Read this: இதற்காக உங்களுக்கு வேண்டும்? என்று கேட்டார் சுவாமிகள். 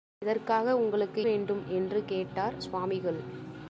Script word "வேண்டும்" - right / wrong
right